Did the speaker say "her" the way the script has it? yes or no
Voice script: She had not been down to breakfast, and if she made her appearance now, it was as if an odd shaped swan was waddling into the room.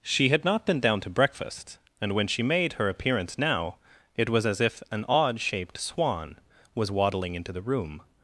yes